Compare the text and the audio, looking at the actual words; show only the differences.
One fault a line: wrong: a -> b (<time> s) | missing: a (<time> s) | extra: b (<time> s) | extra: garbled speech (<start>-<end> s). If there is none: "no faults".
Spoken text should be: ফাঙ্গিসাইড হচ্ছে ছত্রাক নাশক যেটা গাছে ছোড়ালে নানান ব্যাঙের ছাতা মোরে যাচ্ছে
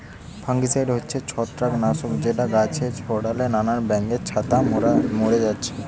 no faults